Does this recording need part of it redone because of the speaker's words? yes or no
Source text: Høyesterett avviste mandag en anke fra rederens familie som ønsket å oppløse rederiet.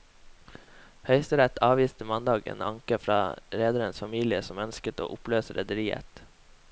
no